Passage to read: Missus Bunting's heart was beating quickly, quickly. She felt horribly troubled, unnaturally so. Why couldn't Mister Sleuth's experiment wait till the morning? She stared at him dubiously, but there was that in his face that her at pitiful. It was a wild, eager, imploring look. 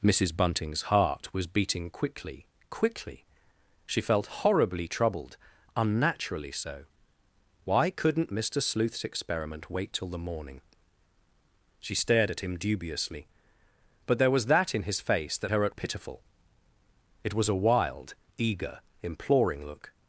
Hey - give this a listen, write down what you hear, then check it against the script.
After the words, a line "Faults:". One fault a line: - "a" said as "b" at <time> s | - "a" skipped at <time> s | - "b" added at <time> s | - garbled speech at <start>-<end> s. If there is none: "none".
Missus Bunting's heart was beating quickly, quickly. She felt horribly troubled, unnaturally so. Why couldn't Mister Sleuth's experiment wait till the morning? She stared at him dubiously, but there was that in his face that her at pitiful. It was a wild, eager, imploring look.
Faults:
none